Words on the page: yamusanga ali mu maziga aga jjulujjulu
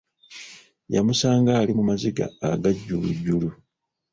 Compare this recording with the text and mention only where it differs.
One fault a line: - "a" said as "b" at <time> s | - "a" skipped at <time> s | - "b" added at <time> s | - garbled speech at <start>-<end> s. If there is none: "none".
none